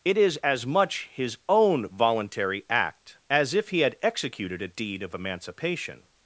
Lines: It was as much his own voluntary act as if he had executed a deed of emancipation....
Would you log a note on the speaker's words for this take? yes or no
yes